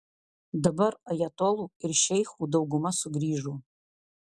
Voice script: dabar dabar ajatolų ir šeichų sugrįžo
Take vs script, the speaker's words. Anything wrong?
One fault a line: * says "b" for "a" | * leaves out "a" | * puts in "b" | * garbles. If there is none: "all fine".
* leaves out "dabar"
* puts in "dauguma"